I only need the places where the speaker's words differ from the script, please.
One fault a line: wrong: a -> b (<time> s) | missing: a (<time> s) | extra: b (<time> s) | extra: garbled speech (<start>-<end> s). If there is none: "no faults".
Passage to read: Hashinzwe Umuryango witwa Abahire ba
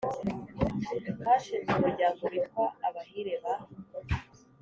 no faults